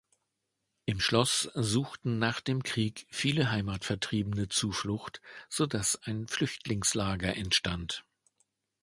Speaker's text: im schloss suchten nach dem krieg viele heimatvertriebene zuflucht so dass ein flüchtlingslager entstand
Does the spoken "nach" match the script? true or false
true